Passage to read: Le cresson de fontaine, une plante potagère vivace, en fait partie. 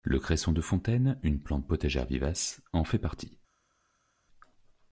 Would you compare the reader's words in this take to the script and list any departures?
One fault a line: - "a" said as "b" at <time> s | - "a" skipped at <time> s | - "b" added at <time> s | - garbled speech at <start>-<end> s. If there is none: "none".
none